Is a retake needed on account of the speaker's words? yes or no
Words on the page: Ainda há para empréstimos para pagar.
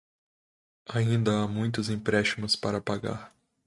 yes